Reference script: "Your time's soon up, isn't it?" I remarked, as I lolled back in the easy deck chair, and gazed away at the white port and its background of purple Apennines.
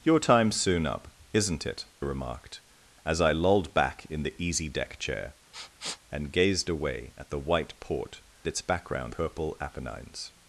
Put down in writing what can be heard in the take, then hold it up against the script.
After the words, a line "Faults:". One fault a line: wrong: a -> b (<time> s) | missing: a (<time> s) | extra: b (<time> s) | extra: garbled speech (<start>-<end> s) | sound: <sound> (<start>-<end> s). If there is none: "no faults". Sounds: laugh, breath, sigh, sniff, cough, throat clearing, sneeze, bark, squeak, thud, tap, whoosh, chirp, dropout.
"Your time's soon up, isn't it?" remarked, as I lolled back in the easy deck chair, and gazed away at the white port its background purple Apennines.
Faults:
missing: I (1.9 s)
sound: sniff (5.5-6.0 s)
missing: and (8.2 s)
missing: of (9.1 s)